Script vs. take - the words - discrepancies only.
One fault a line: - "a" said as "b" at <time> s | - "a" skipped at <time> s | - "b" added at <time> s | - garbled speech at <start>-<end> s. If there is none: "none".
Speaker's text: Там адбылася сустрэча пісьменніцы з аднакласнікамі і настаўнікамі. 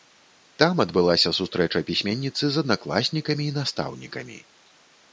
none